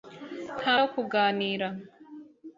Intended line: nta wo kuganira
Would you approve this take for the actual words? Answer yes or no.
yes